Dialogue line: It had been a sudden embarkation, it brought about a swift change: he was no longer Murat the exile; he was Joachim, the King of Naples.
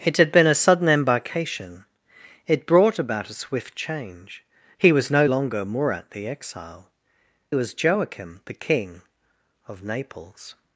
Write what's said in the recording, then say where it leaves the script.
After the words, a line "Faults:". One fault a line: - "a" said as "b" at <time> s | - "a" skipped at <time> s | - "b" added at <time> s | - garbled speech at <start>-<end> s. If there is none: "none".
It had been a sudden embarkation, it brought about a swift change: he was no longer Murat the exile; was Joachim, the King of Naples.
Faults:
- "he" skipped at 6.9 s